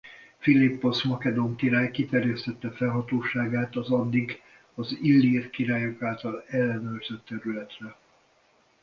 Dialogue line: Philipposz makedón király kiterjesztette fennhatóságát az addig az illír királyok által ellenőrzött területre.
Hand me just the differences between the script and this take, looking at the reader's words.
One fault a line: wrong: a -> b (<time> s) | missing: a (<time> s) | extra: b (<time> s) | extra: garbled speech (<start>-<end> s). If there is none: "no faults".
no faults